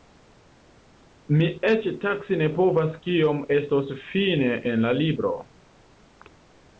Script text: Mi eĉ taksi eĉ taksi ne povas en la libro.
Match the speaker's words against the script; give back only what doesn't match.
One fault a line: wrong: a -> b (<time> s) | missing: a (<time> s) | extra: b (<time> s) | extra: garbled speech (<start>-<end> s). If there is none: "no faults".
wrong: eĉ taksi ne povas -> ne povas kiom estos fine (2.4 s)